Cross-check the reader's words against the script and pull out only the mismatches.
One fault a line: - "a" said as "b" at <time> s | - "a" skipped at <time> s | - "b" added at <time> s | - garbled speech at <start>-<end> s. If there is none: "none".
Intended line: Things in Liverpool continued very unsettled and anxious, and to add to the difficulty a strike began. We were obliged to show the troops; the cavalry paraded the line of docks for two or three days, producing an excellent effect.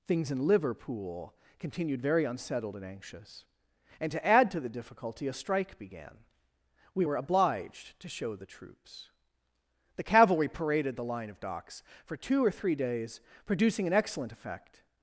none